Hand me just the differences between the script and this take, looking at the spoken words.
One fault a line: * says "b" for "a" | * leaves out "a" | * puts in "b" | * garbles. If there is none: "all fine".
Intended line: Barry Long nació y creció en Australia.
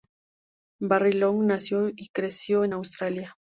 all fine